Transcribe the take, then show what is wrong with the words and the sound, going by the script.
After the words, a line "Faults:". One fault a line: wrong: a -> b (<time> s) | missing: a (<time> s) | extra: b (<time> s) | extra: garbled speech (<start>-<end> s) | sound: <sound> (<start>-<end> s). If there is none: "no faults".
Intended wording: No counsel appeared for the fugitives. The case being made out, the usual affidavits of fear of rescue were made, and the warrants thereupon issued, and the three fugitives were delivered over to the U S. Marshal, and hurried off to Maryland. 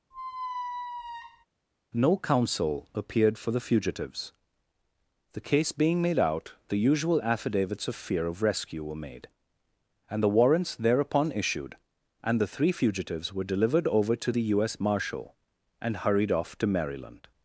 No counsel appeared for the fugitives. The case being made out, the usual affidavits of fear of rescue were made, and the warrants thereupon issued, and the three fugitives were delivered over to the U S. Marshal, and hurried off to Maryland.
Faults:
sound: squeak (0.1-1.5 s)